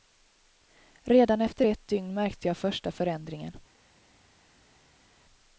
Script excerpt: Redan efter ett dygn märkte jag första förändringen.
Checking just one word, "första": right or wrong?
right